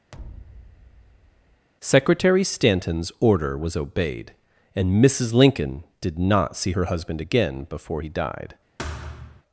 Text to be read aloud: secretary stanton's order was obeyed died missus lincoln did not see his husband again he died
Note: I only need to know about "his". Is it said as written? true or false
false